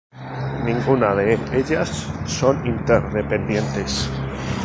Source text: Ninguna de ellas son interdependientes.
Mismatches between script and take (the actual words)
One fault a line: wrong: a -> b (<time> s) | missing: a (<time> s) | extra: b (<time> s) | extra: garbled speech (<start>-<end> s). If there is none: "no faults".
no faults